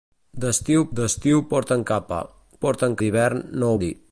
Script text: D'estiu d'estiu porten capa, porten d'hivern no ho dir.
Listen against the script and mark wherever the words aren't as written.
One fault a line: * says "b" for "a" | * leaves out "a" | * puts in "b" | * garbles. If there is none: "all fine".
all fine